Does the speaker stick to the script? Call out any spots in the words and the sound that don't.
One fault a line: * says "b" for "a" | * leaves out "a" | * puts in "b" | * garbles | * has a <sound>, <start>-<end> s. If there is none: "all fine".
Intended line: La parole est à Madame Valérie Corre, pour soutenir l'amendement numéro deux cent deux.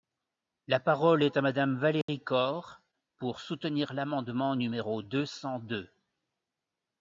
* has a dropout, 2.0-2.1 s